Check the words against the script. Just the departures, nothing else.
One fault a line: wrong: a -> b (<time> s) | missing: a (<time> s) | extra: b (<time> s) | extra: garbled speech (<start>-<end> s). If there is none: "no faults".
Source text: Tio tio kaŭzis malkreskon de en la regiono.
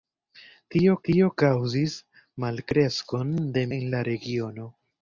no faults